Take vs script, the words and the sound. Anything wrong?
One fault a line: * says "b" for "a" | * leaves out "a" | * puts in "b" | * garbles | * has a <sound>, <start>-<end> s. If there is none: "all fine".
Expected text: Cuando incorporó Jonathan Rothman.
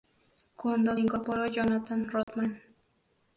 * has a dropout, 2.2-2.3 s